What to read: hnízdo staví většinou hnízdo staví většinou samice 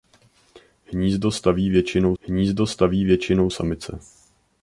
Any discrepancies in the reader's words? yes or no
no